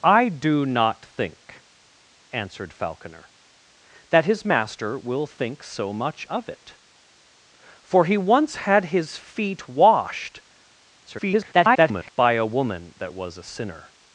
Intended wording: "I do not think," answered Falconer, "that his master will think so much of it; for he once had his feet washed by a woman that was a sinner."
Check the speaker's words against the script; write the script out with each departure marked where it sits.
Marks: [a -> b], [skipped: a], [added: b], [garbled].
"I do not think," answered Falconer, "that his master will think so much of it; for he once had his feet washed [garbled] by a woman that was a sinner."